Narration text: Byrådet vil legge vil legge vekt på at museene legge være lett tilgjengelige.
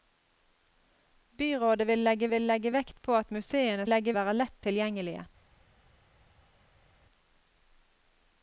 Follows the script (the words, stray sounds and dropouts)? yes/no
yes